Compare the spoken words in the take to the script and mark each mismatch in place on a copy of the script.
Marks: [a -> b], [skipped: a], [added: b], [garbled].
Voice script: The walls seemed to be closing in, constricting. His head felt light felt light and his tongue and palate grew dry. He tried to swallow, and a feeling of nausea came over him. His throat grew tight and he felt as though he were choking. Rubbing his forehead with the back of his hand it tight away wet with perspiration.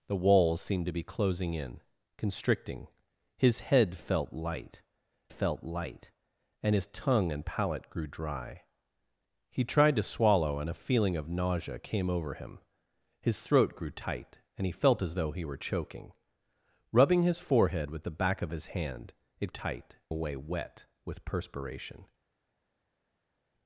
The walls seemed to be closing in, constricting. His head felt light felt light and his tongue and palate grew dry. He tried to swallow, and a feeling of nausea came over him. His throat grew tight and he felt as though he were choking. Rubbing his forehead with the back of his hand it tight away wet with perspiration.